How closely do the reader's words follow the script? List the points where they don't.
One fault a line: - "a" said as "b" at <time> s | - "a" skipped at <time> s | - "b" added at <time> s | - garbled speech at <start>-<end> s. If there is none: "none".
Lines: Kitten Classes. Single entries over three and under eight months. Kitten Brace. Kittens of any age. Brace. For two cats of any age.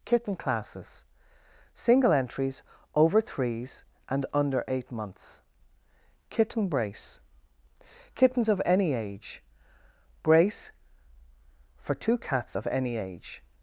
- "three" said as "threes" at 3.2 s